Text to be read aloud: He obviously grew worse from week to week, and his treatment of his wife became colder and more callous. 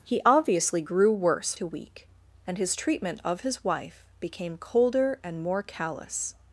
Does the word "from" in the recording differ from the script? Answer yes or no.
yes